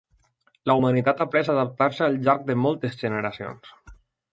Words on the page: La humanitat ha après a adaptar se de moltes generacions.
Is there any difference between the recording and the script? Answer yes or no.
yes